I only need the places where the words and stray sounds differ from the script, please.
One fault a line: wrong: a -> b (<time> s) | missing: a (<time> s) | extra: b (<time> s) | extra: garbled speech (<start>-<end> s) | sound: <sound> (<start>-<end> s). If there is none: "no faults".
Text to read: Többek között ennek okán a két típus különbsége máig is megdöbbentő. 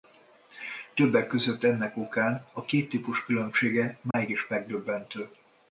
sound: dropout (4.1-4.1 s)